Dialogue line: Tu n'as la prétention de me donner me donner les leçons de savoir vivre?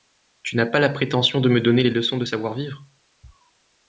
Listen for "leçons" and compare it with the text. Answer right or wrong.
right